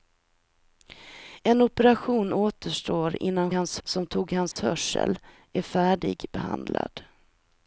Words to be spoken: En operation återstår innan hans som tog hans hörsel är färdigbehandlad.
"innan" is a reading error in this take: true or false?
false